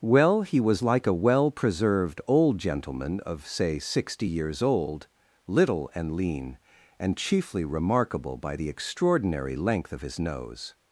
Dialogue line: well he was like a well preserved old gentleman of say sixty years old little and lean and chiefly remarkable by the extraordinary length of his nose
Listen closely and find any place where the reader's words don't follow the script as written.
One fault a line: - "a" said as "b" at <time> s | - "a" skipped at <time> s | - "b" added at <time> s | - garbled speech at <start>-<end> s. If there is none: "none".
none